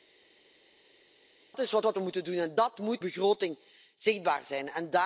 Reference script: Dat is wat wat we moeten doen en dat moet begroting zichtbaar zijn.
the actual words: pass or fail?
pass